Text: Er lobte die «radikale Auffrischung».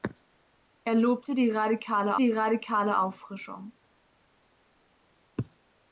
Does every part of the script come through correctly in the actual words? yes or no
no